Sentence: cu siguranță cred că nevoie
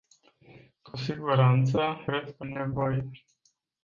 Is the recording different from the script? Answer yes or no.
no